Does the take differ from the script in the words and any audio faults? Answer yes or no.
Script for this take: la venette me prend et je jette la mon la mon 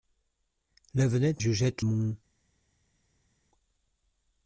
yes